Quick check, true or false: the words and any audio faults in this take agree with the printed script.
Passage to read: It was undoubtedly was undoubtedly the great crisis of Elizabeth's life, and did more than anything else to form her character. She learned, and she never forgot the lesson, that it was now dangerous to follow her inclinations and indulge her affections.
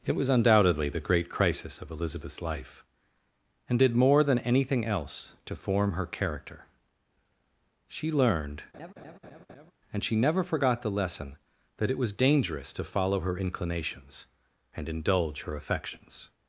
false